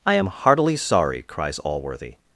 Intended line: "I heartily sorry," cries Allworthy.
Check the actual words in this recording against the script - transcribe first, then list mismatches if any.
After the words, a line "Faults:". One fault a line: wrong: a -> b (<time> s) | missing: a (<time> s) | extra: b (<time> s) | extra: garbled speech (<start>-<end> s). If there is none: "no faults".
"I am heartily sorry," cries Allworthy.
Faults:
extra: am (0.1 s)